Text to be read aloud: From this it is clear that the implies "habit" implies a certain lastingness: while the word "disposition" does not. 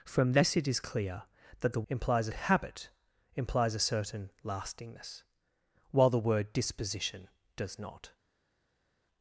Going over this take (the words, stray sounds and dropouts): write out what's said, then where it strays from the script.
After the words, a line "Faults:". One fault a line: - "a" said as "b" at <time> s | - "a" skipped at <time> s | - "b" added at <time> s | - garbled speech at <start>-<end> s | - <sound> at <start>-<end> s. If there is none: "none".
From this it is clear that the implies "habit" implies a certain lastingness: while the word "disposition" does not.
Faults:
none